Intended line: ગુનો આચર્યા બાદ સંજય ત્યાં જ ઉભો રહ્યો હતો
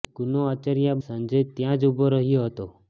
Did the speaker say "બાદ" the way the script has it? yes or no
no